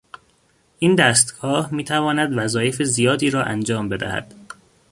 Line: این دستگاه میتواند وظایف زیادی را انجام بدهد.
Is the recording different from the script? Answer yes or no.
no